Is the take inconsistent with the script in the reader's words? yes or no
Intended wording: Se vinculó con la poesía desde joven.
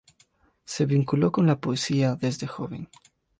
no